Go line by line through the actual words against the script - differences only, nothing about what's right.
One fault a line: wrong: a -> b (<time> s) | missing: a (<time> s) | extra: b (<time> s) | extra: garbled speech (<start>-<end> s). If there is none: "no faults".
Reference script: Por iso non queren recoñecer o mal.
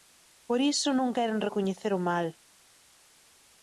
no faults